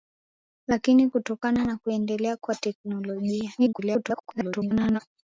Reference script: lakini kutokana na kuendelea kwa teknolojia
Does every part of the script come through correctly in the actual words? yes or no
no